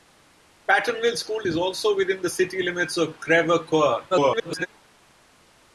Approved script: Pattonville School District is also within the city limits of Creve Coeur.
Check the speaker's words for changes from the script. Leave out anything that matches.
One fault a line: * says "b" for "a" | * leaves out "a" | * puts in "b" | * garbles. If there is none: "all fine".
* leaves out "District"
* garbles